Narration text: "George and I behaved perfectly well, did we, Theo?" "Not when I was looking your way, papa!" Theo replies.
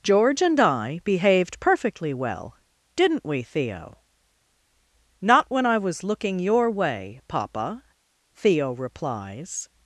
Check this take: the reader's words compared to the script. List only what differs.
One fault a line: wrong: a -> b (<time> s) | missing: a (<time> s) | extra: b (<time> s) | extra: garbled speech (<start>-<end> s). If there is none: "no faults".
wrong: did -> didn't (3.0 s)